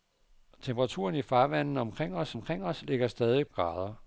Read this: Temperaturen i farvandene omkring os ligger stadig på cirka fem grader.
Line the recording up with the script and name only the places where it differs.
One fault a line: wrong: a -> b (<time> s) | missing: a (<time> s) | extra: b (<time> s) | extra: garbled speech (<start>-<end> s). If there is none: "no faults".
extra: omkring os (2.3 s)
missing: på cirka fem (3.5 s)